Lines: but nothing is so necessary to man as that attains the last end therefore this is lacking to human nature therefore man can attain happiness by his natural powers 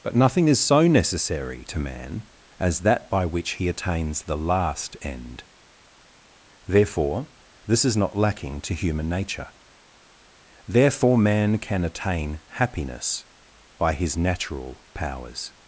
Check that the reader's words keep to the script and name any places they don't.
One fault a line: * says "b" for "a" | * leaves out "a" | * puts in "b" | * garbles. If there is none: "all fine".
* puts in "by which he"
* puts in "not"